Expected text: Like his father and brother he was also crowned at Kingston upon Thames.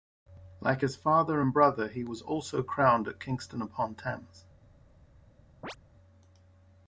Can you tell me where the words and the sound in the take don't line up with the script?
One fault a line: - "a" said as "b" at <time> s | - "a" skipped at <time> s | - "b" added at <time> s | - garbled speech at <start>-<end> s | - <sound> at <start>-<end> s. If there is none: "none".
- chirp at 5.6-5.8 s